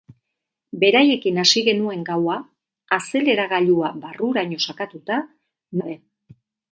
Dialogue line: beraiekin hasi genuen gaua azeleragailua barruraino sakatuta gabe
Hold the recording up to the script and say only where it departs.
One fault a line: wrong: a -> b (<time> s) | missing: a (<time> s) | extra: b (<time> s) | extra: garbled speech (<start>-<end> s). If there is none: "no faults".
no faults